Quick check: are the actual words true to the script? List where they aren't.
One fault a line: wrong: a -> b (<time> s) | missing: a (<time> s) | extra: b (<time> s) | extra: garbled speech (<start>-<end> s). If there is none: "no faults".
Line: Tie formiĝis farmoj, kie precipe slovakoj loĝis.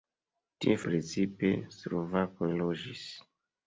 missing: formiĝis farmoj kie (0.8 s)